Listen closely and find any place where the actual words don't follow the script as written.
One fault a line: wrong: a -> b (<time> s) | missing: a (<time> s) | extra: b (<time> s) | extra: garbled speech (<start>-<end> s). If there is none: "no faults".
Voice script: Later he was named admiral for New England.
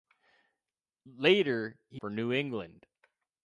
missing: was named admiral (2.0 s)